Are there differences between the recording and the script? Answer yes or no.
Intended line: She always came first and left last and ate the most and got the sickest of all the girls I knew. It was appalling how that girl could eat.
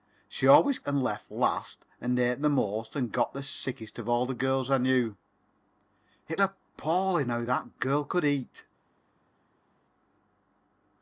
yes